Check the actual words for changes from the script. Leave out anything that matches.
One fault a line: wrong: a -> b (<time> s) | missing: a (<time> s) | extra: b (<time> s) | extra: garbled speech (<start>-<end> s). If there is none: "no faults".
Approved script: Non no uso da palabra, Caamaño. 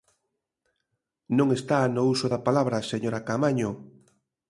extra: está (1.6 s)
extra: señora (2.9 s)